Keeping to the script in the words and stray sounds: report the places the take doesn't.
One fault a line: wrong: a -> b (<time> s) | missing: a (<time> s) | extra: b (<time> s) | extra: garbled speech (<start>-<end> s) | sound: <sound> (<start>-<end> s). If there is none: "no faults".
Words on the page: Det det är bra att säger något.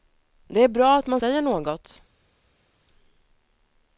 missing: det (0.6 s)
extra: man (1.1 s)